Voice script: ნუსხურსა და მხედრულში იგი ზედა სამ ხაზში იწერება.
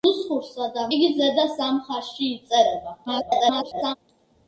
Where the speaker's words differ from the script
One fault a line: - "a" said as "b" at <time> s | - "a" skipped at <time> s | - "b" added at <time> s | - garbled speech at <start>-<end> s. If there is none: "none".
- "მხედრულში" skipped at 0.8 s
- garbled speech at 3.1-4.0 s